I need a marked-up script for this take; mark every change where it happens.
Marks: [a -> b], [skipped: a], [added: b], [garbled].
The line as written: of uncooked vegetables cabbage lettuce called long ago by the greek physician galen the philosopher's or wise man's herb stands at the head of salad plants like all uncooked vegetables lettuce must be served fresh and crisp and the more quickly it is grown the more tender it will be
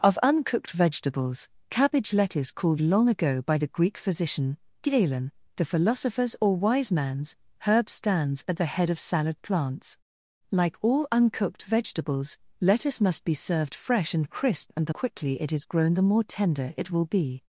of uncooked vegetables cabbage lettuce called long ago by the greek physician galen the philosopher's or wise man's herb stands at the head of salad plants like all uncooked vegetables lettuce must be served fresh and crisp and the [skipped: more] quickly it is grown the more tender it will be